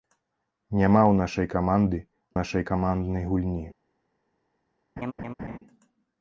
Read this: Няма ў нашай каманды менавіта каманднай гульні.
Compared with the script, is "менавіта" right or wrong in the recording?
wrong